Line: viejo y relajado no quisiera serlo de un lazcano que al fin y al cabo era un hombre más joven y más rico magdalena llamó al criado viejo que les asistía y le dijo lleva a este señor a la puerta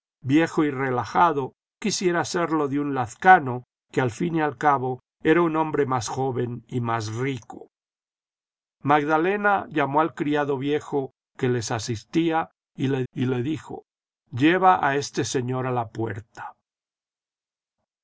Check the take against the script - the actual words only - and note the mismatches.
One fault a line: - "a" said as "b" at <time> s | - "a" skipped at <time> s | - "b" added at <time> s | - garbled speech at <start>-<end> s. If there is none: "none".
- "no" skipped at 1.5 s
- "y le" added at 13.1 s